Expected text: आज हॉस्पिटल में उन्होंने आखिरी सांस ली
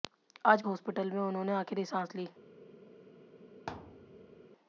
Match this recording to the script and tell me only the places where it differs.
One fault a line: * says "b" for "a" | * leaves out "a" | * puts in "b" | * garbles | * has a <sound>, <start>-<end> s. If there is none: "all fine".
* has a thud, 3.7-4.5 s